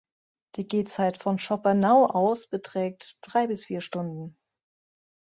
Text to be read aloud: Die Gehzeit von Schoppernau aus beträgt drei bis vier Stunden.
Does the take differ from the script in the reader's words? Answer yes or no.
no